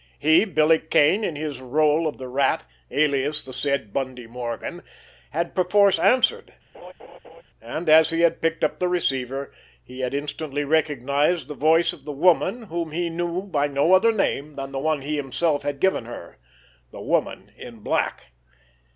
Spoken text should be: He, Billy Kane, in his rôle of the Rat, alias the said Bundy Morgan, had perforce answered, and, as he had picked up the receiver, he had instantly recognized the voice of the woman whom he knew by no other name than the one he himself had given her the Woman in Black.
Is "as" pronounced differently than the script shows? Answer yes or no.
no